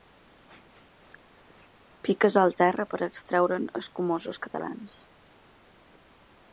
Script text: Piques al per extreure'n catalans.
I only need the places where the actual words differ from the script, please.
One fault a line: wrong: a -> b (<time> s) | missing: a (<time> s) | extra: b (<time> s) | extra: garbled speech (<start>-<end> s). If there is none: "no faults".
extra: terra (2.6 s)
extra: escumosos (3.8 s)